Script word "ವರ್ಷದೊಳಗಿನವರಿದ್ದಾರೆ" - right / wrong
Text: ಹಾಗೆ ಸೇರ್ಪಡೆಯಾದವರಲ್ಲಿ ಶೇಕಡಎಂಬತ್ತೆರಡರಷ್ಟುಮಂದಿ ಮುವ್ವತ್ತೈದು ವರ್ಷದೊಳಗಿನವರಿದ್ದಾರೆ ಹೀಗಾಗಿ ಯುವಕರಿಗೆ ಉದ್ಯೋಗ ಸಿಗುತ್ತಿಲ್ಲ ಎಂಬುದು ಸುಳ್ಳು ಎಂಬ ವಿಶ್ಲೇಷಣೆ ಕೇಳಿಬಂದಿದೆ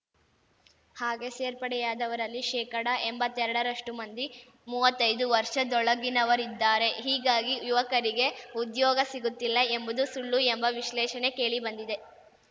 right